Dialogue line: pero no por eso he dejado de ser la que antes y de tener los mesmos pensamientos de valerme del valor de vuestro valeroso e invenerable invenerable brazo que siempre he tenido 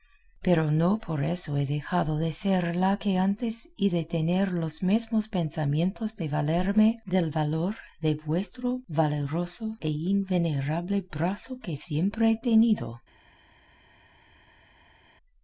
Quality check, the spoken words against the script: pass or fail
fail